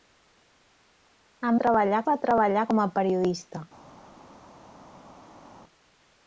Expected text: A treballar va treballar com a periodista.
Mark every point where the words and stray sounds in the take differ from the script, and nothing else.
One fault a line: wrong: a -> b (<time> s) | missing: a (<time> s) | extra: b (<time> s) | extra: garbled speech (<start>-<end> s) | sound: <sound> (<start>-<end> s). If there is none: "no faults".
no faults